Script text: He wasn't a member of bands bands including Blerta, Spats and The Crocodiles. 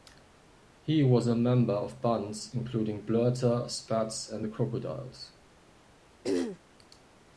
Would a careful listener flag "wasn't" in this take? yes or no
yes